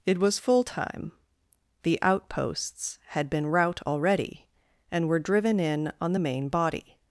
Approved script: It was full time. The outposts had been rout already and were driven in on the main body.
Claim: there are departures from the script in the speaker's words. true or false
false